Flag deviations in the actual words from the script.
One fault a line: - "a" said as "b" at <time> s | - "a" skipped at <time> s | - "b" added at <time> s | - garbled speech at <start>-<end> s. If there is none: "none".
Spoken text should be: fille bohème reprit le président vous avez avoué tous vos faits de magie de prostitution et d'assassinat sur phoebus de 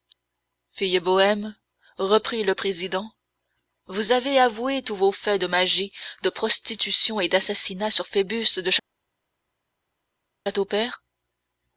none